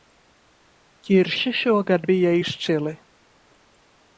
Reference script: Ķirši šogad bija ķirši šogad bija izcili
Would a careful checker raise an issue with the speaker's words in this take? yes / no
yes